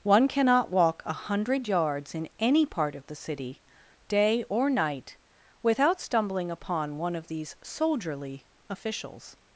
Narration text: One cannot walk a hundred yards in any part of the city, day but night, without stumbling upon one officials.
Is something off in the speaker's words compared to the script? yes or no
yes